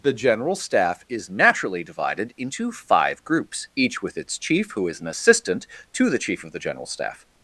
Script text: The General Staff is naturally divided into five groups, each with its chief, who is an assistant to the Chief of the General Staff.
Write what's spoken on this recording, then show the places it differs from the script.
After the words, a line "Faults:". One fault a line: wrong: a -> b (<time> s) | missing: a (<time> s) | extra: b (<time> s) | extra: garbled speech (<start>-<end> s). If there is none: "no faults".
The General Staff is naturally divided into five groups, each with its chief, who is an assistant to the Chief of the General Staff.
Faults:
no faults